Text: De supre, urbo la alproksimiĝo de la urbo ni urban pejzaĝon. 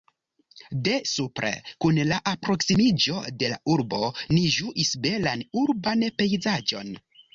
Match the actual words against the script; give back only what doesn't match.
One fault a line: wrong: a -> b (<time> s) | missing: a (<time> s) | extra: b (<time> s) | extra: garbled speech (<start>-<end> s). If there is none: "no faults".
wrong: urbo -> kun (1.9 s)
extra: ĝuis belan (4.6 s)